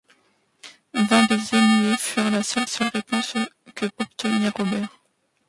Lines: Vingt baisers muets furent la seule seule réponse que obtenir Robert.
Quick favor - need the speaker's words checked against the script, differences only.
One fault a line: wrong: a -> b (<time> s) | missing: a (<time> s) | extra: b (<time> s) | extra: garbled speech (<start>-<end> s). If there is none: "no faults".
no faults